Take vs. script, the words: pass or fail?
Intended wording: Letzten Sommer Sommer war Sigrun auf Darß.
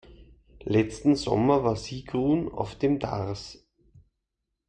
fail